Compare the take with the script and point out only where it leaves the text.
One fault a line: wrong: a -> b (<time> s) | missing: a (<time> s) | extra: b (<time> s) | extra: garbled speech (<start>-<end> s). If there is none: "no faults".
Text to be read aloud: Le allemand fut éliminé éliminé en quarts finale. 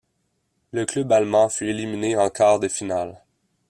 extra: club (0.9 s)
missing: éliminé (2.2 s)
extra: de (2.6 s)